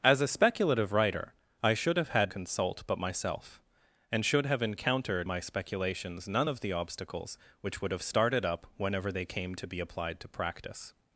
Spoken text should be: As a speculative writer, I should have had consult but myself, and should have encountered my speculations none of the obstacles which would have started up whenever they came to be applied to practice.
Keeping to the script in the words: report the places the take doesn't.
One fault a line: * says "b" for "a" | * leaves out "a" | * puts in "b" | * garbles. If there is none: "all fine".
all fine